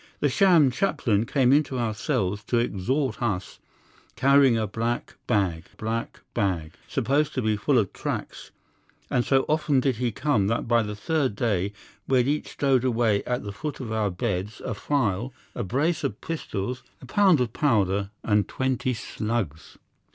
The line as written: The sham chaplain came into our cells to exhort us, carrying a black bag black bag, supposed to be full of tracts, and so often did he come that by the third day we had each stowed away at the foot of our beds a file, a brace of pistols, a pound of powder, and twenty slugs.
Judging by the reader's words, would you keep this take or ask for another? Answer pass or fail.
pass